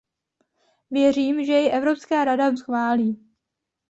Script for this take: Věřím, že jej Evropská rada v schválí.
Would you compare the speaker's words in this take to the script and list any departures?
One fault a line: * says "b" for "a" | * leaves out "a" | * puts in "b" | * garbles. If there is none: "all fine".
all fine